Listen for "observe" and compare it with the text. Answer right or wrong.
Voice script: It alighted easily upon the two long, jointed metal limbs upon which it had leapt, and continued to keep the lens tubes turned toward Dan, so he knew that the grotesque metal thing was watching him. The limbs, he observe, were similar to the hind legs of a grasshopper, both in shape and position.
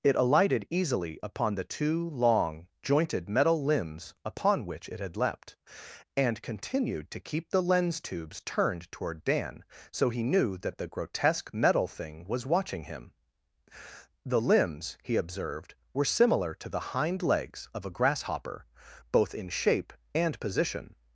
wrong